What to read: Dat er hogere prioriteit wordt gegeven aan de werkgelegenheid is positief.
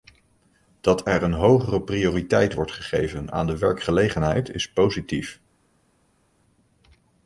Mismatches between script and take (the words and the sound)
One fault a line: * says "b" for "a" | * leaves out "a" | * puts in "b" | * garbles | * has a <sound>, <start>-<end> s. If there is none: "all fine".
* puts in "een"